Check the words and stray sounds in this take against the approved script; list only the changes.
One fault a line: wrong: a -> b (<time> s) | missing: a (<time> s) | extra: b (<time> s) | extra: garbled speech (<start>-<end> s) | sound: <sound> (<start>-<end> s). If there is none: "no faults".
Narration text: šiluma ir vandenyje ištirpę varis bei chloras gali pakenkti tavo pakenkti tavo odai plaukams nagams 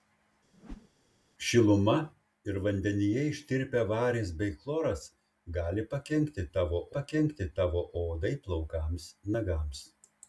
sound: whoosh (0.5-0.9 s)